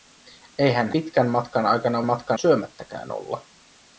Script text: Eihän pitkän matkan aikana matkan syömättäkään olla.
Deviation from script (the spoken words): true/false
false